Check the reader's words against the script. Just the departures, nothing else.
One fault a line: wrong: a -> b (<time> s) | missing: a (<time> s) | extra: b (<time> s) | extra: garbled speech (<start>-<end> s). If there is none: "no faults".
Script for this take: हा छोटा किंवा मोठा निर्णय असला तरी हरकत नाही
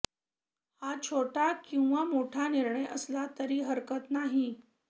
no faults